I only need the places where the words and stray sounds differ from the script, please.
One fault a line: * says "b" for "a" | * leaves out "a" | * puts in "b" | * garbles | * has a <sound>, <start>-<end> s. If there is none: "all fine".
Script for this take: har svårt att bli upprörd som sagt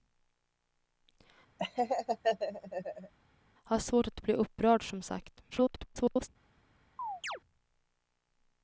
* has a laugh, 1.6-3.1 s
* garbles
* has a chirp, 7.0-7.4 s